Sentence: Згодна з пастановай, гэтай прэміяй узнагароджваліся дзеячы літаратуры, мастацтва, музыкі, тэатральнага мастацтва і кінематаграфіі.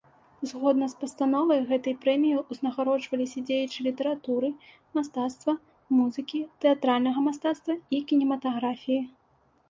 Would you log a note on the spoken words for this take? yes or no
no